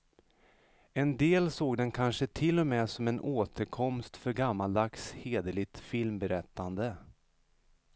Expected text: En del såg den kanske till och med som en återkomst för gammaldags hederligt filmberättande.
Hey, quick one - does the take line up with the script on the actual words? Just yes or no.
yes